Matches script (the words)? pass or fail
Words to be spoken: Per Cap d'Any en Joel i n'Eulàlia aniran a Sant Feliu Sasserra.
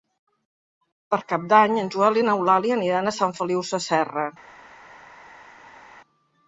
pass